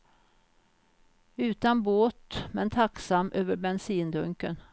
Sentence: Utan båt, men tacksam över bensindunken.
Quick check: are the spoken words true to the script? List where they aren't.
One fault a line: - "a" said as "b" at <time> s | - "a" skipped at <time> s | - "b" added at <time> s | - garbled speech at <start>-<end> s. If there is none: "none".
none